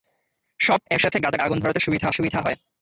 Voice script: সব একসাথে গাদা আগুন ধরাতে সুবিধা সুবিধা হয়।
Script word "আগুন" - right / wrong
right